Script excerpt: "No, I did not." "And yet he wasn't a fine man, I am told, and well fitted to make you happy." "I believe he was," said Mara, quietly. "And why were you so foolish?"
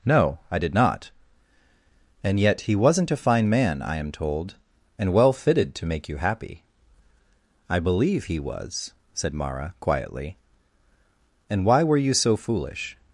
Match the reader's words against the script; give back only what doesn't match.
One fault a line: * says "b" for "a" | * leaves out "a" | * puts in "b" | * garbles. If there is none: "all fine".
all fine